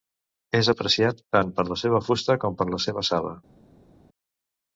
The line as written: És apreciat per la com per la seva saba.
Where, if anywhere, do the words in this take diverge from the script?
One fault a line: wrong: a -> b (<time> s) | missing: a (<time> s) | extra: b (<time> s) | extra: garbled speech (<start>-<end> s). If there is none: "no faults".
extra: tant (1.4 s)
extra: seva fusta (1.8 s)